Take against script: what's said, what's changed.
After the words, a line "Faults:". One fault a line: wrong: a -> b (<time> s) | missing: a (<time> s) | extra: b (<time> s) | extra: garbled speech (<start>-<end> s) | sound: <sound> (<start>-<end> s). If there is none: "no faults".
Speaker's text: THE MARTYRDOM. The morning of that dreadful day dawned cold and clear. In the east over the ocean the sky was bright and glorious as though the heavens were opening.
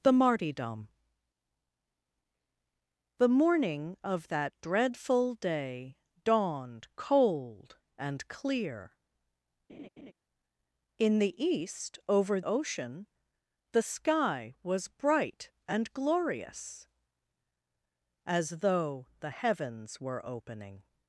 THE MARTYRDOM. The morning of that dreadful day dawned cold and clear. In the east over ocean the sky was bright and glorious as though the heavens were opening.
Faults:
sound: laugh (9.7-10.1 s)
missing: the (12.4 s)